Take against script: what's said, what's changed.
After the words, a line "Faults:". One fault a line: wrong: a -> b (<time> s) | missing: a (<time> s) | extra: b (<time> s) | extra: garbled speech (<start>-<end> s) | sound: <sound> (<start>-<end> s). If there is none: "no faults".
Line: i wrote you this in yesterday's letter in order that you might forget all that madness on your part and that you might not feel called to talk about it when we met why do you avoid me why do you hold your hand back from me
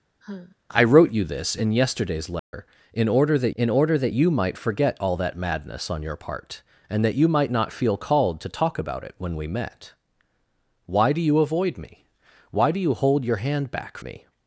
i wrote you this in yesterday's letter in order that in order that you might forget all that madness on your part and that you might not feel called to talk about it when we met why do you avoid me why do you hold your hand back me
Faults:
sound: sigh (0.2-0.6 s)
sound: dropout (2.4-2.5 s)
extra: in order that (3.5 s)
missing: from (14.0 s)